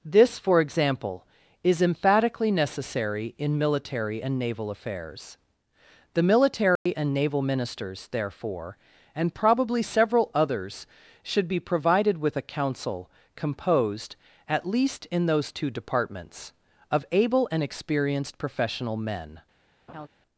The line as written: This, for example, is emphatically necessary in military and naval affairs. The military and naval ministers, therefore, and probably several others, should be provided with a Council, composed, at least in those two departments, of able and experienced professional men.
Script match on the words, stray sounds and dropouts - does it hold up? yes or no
no